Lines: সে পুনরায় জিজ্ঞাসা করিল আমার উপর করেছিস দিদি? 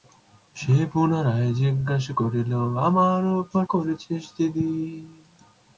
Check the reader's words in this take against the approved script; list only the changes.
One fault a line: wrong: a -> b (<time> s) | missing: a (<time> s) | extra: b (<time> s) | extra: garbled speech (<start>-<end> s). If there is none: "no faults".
no faults